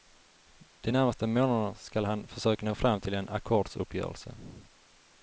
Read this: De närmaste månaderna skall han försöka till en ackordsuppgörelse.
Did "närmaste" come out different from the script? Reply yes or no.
no